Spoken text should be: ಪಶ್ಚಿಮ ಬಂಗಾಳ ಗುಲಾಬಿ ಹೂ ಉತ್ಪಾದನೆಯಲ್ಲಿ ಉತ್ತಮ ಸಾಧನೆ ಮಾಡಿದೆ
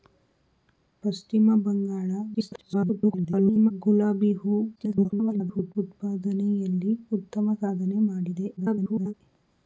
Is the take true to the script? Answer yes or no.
no